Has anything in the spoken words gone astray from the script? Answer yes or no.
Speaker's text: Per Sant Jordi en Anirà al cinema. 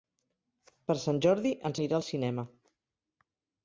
no